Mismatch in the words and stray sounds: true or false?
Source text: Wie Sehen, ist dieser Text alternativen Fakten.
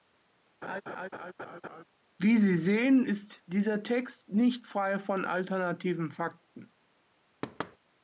true